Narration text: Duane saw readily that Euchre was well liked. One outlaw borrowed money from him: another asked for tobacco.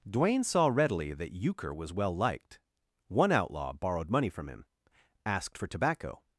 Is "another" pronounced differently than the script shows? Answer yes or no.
yes